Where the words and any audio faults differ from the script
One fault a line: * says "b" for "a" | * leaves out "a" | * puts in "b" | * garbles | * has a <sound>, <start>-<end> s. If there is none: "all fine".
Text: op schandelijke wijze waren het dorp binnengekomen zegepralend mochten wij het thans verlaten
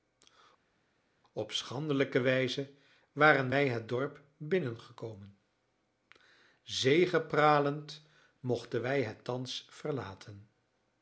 * puts in "wij"